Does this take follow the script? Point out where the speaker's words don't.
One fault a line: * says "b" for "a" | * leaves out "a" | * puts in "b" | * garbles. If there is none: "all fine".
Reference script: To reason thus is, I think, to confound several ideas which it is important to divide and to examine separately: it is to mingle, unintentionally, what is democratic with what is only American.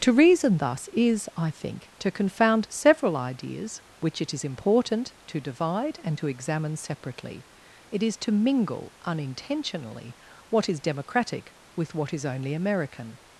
all fine